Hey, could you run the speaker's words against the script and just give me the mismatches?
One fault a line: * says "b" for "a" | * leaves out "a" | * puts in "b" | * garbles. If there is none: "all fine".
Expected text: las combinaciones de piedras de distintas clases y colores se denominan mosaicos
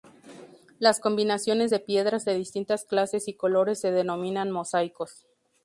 all fine